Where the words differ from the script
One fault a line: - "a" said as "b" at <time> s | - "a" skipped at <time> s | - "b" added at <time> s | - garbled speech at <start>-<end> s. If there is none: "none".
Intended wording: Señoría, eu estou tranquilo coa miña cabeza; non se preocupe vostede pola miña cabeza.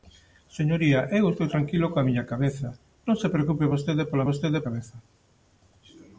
- "miña" said as "vostede" at 4.3 s